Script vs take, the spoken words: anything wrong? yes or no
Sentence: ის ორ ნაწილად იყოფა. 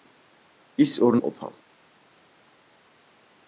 yes